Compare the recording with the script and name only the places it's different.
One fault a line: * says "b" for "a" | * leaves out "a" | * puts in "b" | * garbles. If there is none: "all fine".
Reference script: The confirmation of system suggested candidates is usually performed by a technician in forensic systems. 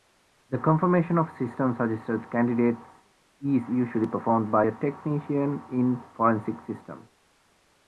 all fine